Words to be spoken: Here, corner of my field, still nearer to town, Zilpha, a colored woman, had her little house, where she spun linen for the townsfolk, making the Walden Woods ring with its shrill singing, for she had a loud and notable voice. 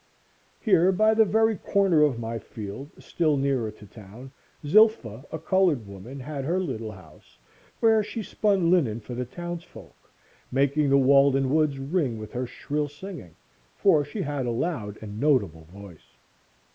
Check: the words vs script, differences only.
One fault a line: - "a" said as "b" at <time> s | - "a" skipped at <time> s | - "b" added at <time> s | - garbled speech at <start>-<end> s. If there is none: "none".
- "by the very" added at 0.9 s
- "its" said as "her" at 12.3 s